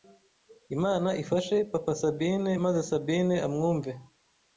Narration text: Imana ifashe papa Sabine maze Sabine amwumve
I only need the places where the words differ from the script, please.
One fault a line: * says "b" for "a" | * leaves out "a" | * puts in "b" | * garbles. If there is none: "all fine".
all fine